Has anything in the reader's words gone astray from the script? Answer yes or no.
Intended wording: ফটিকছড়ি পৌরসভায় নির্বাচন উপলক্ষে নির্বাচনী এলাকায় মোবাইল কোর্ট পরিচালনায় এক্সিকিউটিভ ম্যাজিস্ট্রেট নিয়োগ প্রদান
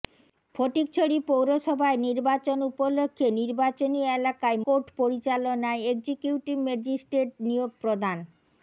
yes